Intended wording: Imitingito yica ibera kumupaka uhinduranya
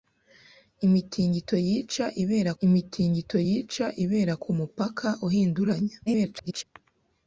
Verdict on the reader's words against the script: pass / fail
fail